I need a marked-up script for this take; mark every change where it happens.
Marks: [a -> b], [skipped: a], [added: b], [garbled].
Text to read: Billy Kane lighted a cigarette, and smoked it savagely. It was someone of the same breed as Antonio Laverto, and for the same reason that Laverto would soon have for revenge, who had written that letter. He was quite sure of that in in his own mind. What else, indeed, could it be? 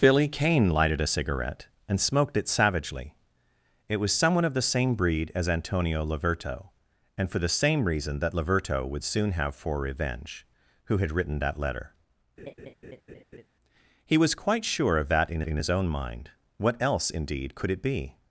Billy Kane lighted a cigarette, and smoked it savagely. It was someone of the same breed as Antonio Laverto, and for the same reason that Laverto would soon have for revenge, who had written that letter. He was quite sure of that in in his own mind. What else, indeed, could it be?